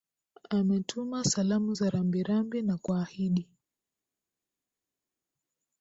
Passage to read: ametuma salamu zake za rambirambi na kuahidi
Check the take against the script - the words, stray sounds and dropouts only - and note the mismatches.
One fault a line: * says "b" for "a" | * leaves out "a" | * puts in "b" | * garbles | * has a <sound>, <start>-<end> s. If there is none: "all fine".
* leaves out "zake"